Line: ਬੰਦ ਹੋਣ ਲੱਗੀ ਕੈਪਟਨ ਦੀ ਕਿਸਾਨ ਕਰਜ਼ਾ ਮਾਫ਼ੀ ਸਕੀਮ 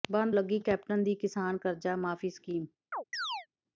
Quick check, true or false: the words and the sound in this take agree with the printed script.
false